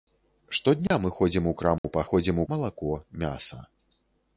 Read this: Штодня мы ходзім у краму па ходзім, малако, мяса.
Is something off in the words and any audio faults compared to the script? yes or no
yes